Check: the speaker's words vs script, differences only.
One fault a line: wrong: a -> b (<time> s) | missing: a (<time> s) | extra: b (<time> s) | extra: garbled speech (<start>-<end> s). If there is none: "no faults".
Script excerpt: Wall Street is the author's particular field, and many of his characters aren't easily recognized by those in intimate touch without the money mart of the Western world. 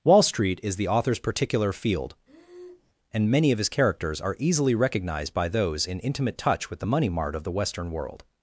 wrong: aren't -> are (4.2 s)
wrong: without -> with (6.7 s)